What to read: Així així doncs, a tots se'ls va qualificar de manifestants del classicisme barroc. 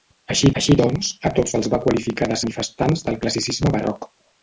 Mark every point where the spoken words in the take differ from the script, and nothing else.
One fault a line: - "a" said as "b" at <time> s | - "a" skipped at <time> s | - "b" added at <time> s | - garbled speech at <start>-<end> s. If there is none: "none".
none